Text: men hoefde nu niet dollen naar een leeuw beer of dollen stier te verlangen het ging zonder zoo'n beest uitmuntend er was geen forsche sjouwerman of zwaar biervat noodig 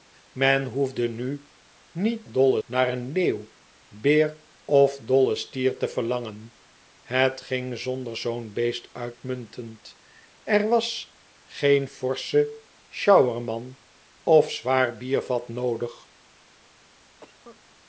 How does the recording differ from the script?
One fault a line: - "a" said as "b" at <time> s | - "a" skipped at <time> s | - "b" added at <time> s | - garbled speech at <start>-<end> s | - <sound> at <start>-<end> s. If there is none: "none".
- cough at 17.2-17.6 s